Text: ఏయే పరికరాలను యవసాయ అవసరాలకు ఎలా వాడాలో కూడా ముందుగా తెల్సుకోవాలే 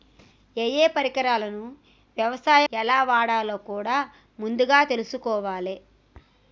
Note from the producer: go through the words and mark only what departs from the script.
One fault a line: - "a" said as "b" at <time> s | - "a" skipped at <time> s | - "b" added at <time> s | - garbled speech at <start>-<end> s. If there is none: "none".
- "అవసరాలకు" skipped at 2.6 s